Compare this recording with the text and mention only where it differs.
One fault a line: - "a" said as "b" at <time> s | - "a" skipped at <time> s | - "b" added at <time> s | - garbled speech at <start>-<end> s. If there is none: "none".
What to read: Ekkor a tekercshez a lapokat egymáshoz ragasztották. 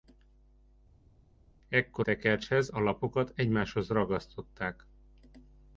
- "a" skipped at 2.1 s